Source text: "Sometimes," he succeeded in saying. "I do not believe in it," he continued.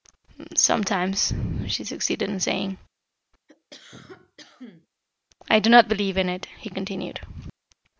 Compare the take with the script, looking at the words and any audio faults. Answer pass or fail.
fail